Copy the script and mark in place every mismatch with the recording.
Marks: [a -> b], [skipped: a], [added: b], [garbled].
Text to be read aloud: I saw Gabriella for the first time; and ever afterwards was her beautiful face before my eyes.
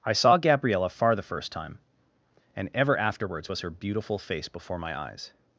I saw Gabriella [for -> far] the first time; and ever afterwards was her beautiful face before my eyes.